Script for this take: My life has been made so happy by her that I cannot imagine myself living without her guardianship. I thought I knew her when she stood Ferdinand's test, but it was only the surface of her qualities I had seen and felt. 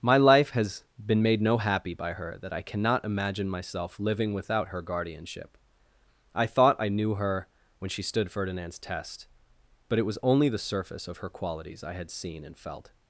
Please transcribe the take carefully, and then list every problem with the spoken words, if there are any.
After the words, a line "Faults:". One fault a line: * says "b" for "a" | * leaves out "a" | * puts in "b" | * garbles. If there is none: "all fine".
My life has been made no happy by her that I cannot imagine myself living without her guardianship. I thought I knew her when she stood Ferdinand's test, but it was only the surface of her qualities I had seen and felt.
Faults:
* says "no" for "so"